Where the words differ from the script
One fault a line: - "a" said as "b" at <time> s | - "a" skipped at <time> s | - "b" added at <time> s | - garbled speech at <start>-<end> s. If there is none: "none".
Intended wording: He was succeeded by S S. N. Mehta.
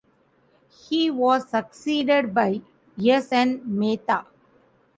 - "S" skipped at 3.4 s